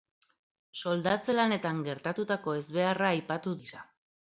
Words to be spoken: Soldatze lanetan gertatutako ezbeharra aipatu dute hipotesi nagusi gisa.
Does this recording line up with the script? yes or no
no